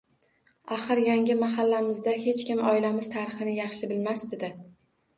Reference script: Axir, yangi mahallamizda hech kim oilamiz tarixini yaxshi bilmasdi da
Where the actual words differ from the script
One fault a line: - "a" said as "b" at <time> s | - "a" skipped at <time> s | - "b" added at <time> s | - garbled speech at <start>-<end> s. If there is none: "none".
none